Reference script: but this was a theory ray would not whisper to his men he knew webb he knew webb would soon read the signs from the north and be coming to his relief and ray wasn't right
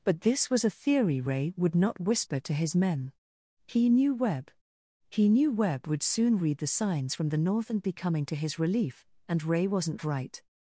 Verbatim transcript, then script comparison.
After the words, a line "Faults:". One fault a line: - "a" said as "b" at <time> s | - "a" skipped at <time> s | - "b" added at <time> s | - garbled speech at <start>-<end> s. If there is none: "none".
but this was a theory ray would not whisper to his men he knew webb he knew webb would soon read the signs from the north and be coming to his relief and ray wasn't right
Faults:
none